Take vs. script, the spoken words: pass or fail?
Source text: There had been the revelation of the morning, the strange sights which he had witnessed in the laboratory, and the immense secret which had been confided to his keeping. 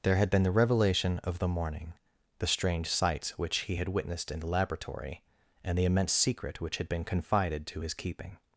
pass